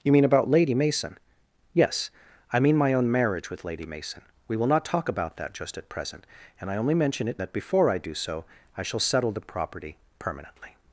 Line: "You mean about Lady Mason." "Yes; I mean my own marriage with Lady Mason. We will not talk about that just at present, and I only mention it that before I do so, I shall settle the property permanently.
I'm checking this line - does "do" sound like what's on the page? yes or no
yes